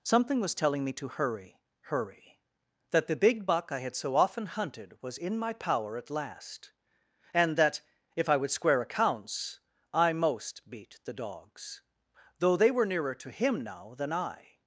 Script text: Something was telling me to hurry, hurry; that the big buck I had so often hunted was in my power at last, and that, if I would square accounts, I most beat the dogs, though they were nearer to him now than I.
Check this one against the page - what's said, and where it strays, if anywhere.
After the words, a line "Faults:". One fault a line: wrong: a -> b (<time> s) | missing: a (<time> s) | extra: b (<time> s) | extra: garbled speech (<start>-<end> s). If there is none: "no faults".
Something was telling me to hurry, hurry; that the big buck I had so often hunted was in my power at last, and that, if I would square accounts, I most beat the dogs, though they were nearer to him now than I.
Faults:
no faults